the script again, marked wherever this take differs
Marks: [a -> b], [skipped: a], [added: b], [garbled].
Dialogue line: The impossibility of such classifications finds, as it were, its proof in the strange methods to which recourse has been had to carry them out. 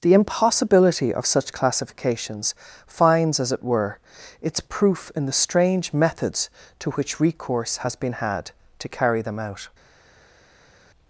The impossibility of such classifications finds, as it were, its proof in the strange methods to which recourse has been had to carry them out.